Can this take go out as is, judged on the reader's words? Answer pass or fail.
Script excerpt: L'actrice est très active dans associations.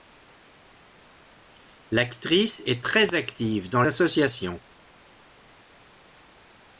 pass